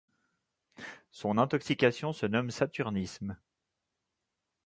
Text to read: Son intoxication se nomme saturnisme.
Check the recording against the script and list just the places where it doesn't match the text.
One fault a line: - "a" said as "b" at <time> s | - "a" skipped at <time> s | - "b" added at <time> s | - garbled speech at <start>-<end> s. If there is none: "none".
none